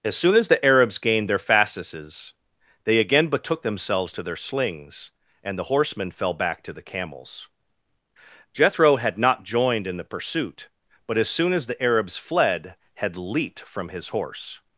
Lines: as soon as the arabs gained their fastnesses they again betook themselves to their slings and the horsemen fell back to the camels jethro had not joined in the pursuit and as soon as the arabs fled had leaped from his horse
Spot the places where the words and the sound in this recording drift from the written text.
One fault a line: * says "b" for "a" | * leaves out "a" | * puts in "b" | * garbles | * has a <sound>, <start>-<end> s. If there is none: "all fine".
* says "but" for "and"